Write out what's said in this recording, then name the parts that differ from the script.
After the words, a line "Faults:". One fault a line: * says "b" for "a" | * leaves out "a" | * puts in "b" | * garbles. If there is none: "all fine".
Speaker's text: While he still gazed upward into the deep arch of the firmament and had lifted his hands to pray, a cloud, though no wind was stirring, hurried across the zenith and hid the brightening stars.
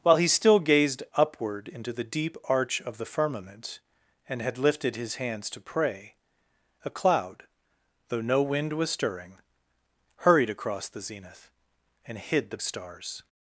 While he still gazed upward into the deep arch of the firmament and had lifted his hands to pray, a cloud, though no wind was stirring, hurried across the zenith and hid the stars.
Faults:
* leaves out "brightening"